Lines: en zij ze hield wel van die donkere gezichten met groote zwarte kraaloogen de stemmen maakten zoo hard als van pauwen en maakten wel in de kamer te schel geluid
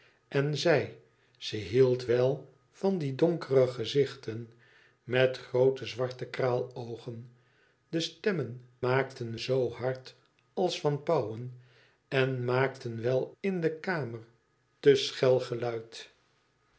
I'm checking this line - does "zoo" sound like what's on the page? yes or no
yes